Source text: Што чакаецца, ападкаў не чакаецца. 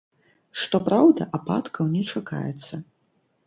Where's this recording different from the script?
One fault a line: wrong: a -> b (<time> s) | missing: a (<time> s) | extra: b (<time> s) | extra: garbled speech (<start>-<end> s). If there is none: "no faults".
wrong: чакаецца -> праўда (0.9 s)